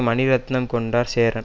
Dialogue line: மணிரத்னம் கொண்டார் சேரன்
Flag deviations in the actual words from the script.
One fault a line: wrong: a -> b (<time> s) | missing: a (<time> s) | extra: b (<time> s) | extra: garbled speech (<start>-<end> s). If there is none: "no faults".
no faults